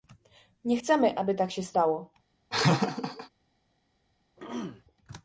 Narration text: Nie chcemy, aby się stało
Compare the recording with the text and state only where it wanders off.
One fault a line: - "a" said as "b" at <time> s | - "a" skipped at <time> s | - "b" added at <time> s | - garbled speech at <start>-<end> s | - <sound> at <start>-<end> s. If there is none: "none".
- "tak" added at 1.3 s
- laugh at 2.5-3.3 s
- throat clearing at 4.4-4.8 s